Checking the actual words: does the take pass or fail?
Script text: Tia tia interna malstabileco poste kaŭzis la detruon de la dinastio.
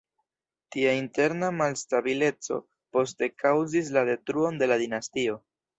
fail